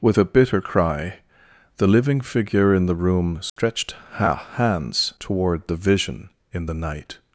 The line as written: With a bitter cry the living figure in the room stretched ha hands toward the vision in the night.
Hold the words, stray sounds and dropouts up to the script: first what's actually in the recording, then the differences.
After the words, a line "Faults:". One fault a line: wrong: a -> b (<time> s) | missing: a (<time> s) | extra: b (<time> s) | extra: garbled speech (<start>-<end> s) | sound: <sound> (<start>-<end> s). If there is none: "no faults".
With a bitter cry the living figure in the room stretched ha hands toward the vision in the night.
Faults:
sound: dropout (3.5-3.6 s)